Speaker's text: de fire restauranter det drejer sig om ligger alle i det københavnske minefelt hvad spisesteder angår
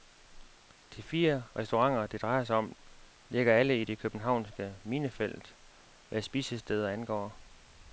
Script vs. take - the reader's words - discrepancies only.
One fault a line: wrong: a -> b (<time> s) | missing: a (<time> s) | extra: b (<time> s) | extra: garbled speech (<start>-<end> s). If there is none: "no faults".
no faults